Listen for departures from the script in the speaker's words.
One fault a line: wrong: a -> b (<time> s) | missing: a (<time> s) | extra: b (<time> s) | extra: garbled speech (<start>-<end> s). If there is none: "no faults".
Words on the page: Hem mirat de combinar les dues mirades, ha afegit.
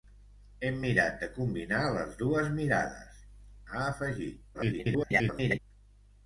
extra: garbled speech (4.5-5.6 s)